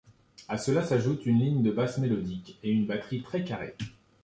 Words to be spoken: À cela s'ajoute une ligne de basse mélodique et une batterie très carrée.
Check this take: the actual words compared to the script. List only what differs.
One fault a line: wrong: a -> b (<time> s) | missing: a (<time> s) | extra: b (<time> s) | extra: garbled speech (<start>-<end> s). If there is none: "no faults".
no faults